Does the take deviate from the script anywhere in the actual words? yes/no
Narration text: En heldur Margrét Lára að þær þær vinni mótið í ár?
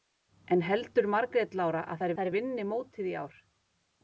no